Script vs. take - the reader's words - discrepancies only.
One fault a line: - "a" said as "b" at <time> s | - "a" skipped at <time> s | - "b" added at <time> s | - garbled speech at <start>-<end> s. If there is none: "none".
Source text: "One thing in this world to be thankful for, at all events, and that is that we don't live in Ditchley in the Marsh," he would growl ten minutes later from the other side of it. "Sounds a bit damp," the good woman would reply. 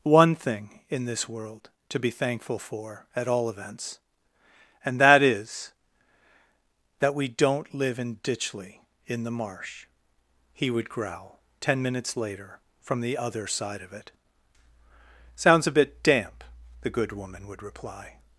none